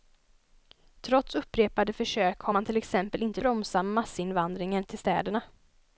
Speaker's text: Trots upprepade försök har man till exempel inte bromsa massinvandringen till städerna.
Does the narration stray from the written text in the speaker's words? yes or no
no